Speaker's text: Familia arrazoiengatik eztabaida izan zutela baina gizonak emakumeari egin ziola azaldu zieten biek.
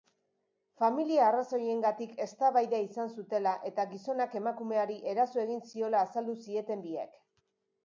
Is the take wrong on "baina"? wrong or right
wrong